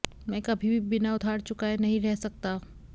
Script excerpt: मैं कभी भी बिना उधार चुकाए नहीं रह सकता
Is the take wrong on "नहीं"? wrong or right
right